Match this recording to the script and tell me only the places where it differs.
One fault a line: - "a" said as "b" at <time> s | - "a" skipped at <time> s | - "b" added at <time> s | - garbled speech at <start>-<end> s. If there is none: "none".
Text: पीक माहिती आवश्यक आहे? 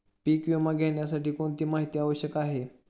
- "विमा घेण्यासाठी कोणती" added at 0.5 s